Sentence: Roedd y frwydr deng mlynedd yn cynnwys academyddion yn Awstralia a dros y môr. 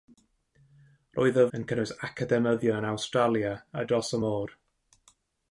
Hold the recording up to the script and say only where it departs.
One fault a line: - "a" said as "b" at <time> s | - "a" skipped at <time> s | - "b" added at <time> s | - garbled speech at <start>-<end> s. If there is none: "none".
- "frwydr deng mlynedd" skipped at 1.4 s